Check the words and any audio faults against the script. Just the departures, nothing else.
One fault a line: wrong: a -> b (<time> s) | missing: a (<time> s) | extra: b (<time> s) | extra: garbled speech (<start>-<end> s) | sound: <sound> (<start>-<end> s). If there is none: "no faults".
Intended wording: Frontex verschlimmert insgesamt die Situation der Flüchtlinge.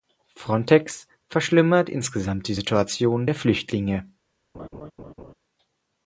sound: laugh (4.5-5.3 s)